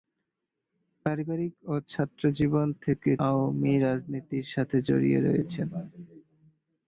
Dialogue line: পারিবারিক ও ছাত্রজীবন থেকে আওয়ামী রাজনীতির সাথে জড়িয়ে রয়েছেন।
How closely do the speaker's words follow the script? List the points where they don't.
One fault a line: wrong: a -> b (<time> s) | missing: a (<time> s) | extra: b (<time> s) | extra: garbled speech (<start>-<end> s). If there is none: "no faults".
no faults